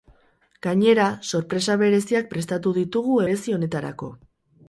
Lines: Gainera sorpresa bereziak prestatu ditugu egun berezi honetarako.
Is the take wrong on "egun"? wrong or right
wrong